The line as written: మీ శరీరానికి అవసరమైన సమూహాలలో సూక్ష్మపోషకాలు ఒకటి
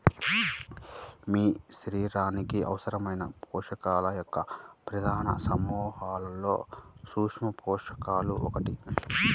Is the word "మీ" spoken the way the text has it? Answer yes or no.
yes